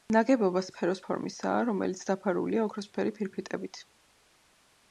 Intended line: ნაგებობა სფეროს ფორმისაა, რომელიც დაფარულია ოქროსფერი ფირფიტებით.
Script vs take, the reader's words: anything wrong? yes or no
no